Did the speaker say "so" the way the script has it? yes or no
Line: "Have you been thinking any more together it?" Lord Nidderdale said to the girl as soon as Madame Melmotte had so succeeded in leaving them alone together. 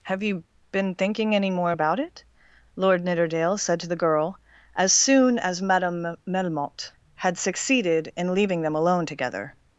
no